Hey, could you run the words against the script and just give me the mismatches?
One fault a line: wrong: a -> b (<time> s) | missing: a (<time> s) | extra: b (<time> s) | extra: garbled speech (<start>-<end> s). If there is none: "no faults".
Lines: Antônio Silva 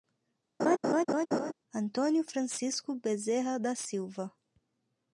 extra: Francisco Bezerra da (2.2 s)